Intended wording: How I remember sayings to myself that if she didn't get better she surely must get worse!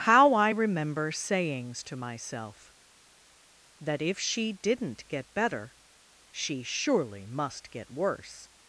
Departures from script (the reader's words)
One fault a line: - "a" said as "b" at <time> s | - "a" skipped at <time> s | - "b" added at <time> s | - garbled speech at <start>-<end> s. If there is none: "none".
none